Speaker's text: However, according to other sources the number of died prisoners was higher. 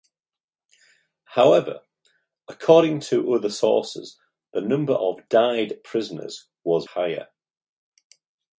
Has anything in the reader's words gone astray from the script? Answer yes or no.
no